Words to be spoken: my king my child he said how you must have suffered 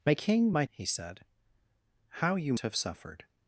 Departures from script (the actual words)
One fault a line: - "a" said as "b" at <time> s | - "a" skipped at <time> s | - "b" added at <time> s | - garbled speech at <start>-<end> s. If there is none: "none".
- "child" skipped at 0.6 s
- "must" skipped at 2.5 s